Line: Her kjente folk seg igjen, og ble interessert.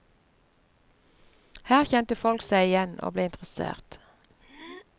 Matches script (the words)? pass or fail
pass